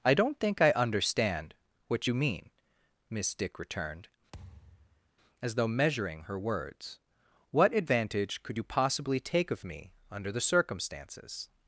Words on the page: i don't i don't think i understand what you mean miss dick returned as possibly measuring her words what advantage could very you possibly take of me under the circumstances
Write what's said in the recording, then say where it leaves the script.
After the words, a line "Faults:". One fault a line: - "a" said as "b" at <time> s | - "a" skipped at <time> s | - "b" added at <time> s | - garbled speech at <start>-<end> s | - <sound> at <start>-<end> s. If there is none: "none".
i don't think i understand what you mean miss dick returned as though measuring her words what advantage could you possibly take of me under the circumstances
Faults:
- "i don't" skipped at 0.4 s
- thud at 4.3-5.1 s
- "possibly" said as "though" at 5.6 s
- "very" skipped at 8.6 s